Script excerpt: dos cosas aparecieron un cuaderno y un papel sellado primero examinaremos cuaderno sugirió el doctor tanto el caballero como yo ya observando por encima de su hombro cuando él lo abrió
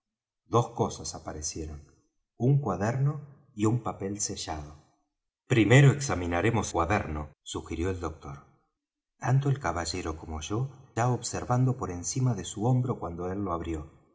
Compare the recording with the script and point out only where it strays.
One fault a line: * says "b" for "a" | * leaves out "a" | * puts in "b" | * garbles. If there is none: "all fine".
all fine